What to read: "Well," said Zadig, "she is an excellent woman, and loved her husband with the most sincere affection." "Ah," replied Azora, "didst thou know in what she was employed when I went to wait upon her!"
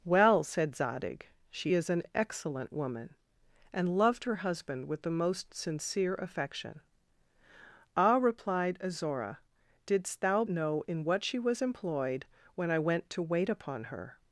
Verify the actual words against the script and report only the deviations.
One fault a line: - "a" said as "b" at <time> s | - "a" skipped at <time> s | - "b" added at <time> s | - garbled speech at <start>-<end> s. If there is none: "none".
none